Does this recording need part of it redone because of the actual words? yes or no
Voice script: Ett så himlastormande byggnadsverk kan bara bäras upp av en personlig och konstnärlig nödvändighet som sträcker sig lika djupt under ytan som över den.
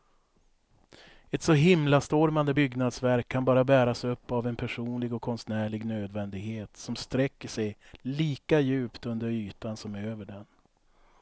no